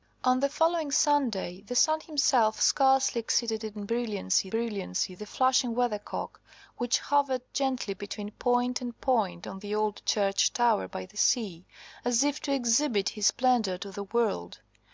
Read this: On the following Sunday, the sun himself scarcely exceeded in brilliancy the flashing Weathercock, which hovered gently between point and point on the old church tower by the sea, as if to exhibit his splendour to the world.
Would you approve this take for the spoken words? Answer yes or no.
no